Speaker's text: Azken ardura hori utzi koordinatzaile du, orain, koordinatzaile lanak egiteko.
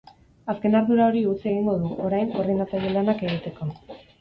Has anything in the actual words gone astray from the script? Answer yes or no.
yes